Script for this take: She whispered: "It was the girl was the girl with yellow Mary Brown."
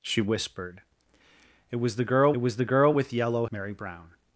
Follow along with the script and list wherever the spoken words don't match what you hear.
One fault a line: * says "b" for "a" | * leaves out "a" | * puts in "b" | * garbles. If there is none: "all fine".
all fine